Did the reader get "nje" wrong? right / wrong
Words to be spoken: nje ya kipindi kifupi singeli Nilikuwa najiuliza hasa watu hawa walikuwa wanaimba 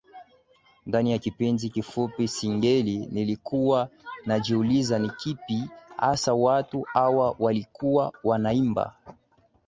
wrong